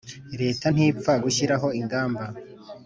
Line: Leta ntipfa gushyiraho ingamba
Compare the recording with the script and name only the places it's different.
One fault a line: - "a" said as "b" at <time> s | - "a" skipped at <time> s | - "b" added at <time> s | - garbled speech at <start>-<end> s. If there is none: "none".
none